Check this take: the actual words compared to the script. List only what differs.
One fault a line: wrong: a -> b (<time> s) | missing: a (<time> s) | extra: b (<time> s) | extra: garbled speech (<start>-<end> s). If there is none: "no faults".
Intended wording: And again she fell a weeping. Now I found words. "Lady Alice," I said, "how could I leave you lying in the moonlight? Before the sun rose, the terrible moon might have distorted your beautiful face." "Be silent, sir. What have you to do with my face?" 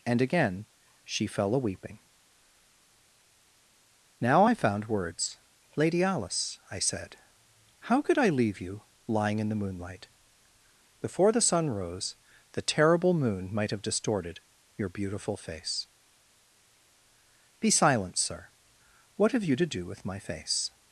no faults